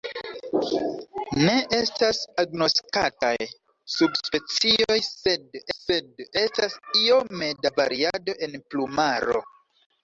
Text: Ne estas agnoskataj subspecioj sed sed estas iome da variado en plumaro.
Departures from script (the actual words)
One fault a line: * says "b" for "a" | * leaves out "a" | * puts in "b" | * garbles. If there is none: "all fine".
all fine